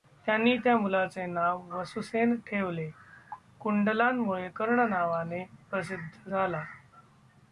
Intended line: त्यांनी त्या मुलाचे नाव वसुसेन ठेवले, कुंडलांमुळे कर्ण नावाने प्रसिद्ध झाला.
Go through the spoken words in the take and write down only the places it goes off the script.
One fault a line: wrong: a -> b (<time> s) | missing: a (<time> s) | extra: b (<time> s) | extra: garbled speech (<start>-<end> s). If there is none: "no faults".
no faults